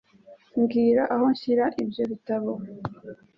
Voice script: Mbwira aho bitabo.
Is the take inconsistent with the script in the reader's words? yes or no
yes